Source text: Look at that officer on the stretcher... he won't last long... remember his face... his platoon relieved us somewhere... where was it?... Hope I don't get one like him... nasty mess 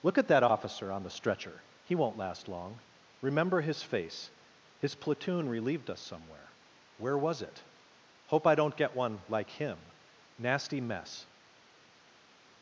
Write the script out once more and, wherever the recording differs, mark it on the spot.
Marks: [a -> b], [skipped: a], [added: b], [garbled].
Look at that officer on the stretcher... he won't last long... remember his face... his platoon relieved us somewhere... where was it?... Hope I don't get one like him... nasty mess